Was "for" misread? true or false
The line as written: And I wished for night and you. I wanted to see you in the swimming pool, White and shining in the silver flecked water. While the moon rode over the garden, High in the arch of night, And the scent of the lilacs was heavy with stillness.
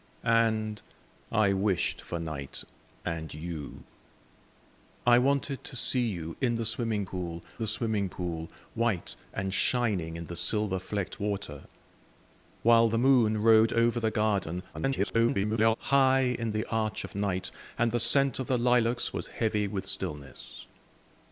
false